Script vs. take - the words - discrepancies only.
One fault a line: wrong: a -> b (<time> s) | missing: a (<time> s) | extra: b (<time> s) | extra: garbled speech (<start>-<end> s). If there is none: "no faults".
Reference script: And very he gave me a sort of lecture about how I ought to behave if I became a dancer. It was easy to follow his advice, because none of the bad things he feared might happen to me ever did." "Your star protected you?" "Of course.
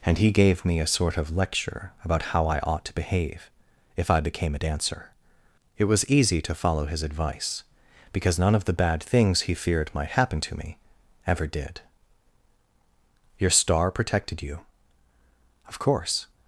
missing: very (0.2 s)